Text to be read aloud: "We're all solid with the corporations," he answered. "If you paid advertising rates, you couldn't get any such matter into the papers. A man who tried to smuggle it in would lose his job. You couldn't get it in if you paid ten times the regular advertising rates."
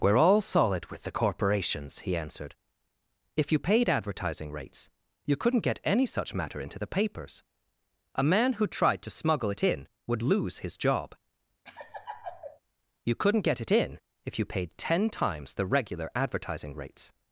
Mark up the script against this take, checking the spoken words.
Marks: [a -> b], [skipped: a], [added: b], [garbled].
"We're all solid with the corporations," he answered. "If you paid advertising rates, you couldn't get any such matter into the papers. A man who tried to smuggle it in would lose his job. You couldn't get it in if you paid ten times the regular advertising rates."